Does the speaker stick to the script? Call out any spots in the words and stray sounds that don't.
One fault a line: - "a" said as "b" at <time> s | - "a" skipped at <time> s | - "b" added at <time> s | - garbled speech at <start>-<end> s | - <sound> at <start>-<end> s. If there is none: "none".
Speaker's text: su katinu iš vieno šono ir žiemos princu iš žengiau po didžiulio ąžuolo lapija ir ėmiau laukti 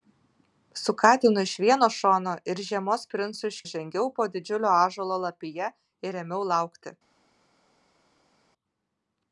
none